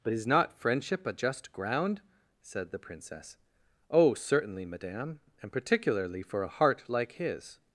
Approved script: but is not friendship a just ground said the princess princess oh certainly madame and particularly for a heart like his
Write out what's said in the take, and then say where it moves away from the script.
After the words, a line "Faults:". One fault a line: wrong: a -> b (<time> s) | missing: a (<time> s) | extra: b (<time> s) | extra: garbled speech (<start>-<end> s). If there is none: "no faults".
but is not friendship a just ground said the princess oh certainly madame and particularly for a heart like his
Faults:
missing: princess (3.4 s)